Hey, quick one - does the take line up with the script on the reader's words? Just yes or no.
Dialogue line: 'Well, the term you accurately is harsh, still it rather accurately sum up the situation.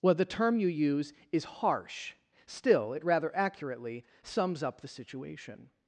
no